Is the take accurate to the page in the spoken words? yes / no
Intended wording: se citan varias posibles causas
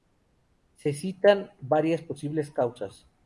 yes